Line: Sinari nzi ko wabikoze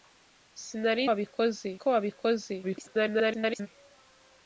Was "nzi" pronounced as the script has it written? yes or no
no